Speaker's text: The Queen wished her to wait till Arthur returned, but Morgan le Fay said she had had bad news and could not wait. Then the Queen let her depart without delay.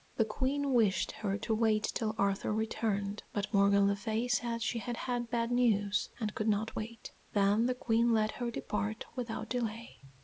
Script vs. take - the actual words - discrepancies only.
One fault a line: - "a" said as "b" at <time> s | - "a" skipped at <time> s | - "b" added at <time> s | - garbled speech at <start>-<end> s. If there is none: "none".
none